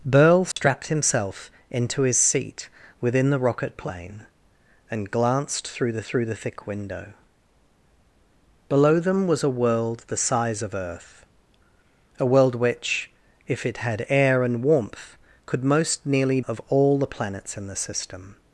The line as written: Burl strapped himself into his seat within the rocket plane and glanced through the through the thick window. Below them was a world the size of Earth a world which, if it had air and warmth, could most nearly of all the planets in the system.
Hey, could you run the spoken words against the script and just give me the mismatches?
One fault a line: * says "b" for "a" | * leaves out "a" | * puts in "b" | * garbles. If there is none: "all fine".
all fine